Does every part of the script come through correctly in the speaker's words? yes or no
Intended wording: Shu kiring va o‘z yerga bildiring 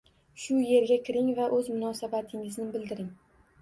no